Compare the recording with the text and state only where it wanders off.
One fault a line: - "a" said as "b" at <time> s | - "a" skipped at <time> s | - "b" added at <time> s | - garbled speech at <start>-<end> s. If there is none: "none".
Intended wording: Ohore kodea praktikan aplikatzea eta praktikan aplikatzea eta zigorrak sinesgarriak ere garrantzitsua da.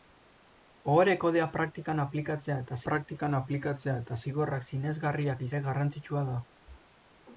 none